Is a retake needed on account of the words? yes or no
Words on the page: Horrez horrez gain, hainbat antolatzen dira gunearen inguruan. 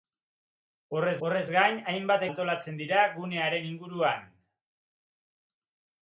no